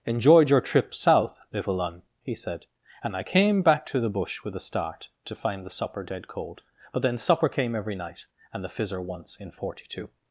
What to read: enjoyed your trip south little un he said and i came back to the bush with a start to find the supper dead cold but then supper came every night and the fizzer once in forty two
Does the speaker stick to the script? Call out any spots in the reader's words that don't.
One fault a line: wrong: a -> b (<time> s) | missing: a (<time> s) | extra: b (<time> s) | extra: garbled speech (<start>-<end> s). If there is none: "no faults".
no faults